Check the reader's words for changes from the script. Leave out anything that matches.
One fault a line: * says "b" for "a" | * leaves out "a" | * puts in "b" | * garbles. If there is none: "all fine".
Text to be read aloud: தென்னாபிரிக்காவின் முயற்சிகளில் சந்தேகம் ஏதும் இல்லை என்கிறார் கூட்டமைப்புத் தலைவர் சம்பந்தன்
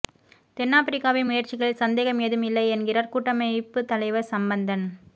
all fine